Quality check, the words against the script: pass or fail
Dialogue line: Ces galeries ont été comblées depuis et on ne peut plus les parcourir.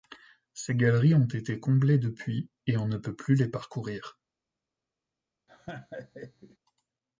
pass